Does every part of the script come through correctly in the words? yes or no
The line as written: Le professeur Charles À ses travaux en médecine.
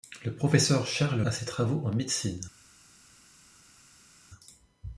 yes